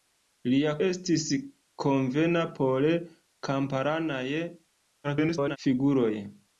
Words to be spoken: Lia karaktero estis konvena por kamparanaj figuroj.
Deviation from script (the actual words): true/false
true